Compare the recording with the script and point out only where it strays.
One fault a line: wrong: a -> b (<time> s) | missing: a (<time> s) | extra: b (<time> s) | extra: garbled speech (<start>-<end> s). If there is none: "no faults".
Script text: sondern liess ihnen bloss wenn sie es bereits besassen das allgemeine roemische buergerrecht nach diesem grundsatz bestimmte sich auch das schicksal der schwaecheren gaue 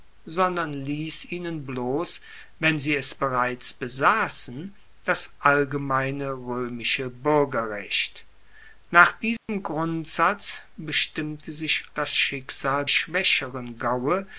missing: auch (11.8 s)
missing: der (12.9 s)